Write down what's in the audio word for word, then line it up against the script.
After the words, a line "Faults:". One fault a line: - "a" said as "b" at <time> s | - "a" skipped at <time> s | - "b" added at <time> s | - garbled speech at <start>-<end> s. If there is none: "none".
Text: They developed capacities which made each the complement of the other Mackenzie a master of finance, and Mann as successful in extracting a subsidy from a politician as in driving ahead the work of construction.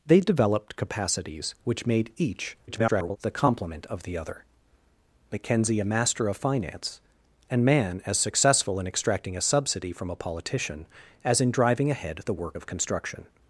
They developed capacities which made each [garbled] the complement of the other Mackenzie a master of finance, and Mann as successful in extracting a subsidy from a politician as in driving ahead the work of construction.
Faults:
- garbled speech at 2.7-3.2 s